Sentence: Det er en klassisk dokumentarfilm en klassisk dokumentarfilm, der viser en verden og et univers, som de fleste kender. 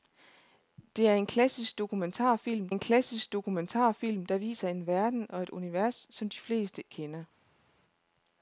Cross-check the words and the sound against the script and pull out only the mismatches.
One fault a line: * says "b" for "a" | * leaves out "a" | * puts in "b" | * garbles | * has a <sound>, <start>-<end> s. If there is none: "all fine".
all fine